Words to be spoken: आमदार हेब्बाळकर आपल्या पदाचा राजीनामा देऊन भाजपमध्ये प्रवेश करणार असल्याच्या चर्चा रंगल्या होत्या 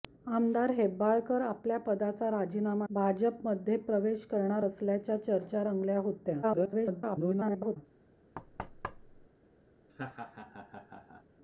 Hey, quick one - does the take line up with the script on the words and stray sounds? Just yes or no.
no